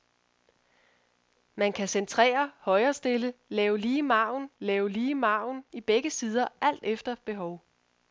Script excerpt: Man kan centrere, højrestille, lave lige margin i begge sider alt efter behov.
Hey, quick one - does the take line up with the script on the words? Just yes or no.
no